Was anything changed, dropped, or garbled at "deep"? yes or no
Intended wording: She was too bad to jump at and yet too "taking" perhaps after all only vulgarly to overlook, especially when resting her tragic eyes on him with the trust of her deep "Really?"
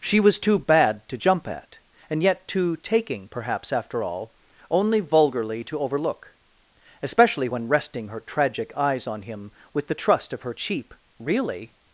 yes